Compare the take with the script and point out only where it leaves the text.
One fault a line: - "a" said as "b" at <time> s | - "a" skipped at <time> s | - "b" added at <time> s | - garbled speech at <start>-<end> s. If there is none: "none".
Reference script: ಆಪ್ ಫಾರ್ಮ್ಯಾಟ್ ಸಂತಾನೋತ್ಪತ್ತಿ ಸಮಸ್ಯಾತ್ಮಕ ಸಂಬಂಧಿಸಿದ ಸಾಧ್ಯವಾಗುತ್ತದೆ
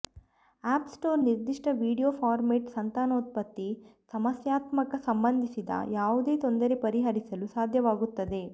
- "ಸ್ಟೋರ್ ನಿರ್ದಿಷ್ಟ ವೀಡಿಯೊ" added at 0.9 s
- "ಯಾವುದೇ ತೊಂದರೆ ಪರಿಹರಿಸಲು" added at 6.0 s